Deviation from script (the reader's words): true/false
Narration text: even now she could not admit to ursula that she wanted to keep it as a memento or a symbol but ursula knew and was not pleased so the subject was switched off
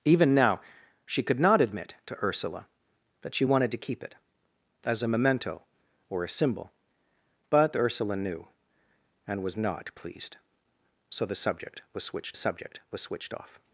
true